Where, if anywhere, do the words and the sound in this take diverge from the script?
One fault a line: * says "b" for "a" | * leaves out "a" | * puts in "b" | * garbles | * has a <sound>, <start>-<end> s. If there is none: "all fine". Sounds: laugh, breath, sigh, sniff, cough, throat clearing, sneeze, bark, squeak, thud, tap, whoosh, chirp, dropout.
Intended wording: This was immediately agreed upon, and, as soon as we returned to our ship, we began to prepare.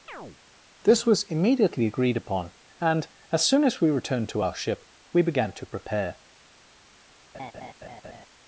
* has a chirp, 0.1-0.4 s
* has a laugh, 7.3-8.3 s